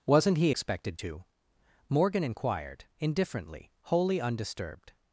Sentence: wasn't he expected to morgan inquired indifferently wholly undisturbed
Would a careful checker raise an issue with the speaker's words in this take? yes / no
no